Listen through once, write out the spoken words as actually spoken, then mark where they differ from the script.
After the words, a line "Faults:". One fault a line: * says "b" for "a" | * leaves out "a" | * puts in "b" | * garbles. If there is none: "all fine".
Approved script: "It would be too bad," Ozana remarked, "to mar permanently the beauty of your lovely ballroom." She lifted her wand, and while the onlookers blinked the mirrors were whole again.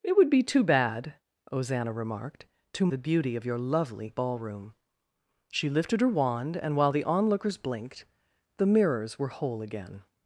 "It would be too bad," Ozana remarked, "to the beauty of your lovely ballroom." She lifted her wand, and while the onlookers blinked the mirrors were whole again.
Faults:
* leaves out "mar permanently"